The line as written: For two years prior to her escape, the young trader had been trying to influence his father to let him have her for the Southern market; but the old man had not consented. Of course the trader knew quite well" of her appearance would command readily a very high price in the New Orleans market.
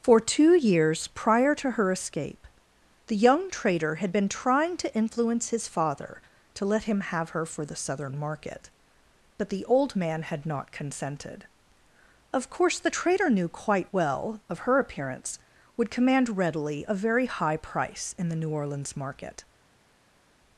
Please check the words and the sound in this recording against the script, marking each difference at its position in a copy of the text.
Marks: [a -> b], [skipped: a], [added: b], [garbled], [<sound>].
For two years prior to her escape, the young trader had been trying to influence his father to let him have her for the Southern market; but the old man had not consented. Of course the trader knew quite well" of her appearance would command readily a very high price in the New Orleans market.